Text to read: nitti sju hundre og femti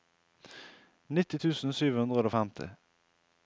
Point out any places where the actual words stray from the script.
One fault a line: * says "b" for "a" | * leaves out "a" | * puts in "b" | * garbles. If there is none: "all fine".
* puts in "tusen"